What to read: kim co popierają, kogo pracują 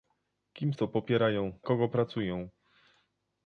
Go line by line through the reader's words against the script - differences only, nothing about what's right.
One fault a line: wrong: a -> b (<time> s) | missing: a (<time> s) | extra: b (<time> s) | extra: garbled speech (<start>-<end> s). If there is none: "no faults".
no faults